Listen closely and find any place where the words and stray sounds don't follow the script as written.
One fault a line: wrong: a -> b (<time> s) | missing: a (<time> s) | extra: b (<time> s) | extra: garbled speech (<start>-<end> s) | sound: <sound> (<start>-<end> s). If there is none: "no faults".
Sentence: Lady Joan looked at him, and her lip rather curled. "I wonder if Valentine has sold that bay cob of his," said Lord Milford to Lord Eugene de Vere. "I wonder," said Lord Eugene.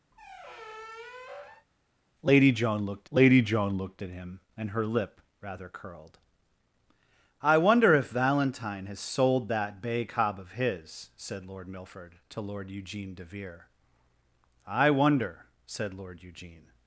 sound: squeak (0.1-1.7 s)
extra: lady Joan looked (3.1 s)